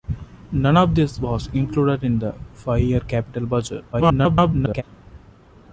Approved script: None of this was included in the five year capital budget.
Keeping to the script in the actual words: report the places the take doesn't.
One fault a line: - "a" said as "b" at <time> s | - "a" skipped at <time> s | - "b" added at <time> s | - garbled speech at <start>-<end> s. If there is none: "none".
- garbled speech at 3.9-4.8 s